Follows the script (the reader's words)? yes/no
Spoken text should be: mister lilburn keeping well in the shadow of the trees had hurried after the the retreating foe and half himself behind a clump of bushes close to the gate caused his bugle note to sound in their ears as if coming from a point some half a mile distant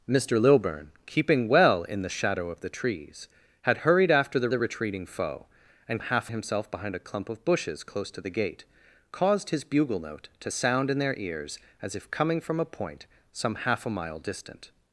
yes